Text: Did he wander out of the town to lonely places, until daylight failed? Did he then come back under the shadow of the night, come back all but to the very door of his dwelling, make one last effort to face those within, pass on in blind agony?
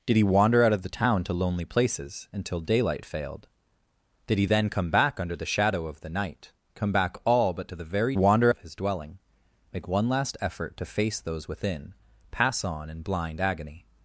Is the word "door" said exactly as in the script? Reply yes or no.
no